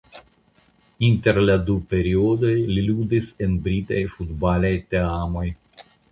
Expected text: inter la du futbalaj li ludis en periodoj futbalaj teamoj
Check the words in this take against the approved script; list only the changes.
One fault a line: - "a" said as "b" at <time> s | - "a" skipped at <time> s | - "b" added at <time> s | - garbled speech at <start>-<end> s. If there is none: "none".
- "futbalaj" said as "periodoj" at 1.9 s
- "periodoj" said as "britaj" at 3.7 s